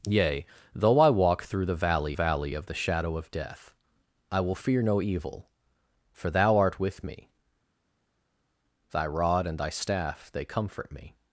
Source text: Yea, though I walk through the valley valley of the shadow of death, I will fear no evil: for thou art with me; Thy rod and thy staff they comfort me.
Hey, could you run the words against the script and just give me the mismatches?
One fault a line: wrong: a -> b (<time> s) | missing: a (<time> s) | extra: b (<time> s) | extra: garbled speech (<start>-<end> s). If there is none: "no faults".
no faults